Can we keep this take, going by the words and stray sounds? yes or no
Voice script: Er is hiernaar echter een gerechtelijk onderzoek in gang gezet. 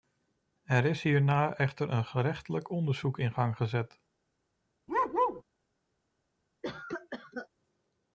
no